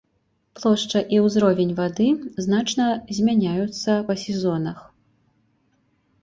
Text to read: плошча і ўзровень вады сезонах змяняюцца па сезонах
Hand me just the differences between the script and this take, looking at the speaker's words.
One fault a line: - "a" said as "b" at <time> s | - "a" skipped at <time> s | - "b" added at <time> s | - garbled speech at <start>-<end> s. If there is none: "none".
- "сезонах" said as "значна" at 2.5 s